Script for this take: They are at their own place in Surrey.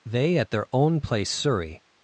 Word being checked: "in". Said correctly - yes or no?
no